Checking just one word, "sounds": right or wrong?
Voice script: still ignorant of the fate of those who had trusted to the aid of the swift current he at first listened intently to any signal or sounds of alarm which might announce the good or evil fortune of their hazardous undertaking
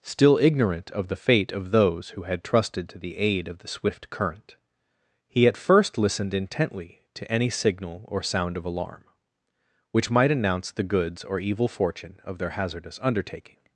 wrong